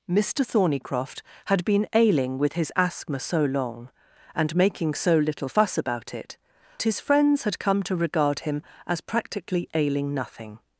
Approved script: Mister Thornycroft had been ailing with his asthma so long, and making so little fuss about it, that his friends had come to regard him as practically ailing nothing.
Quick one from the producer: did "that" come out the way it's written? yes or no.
no